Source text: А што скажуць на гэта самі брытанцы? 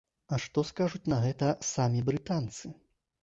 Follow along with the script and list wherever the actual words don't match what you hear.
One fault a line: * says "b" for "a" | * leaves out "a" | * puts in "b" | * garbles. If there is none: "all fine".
all fine